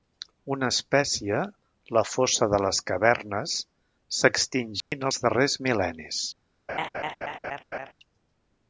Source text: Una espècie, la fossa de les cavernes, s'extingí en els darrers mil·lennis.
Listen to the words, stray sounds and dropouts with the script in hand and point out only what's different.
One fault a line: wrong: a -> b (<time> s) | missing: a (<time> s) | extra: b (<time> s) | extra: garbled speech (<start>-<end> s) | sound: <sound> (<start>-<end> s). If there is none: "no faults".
sound: dropout (4.8-4.9 s)
sound: laugh (6.7-7.9 s)